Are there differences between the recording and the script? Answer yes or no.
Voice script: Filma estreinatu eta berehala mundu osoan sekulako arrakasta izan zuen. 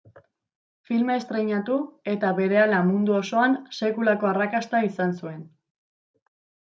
no